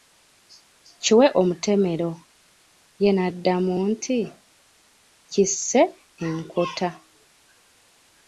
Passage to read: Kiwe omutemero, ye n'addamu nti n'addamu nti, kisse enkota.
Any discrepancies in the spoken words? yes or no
yes